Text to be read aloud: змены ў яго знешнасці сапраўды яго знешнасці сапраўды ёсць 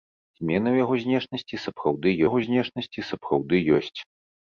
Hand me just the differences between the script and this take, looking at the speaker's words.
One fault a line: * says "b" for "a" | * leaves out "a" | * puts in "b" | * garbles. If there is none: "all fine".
all fine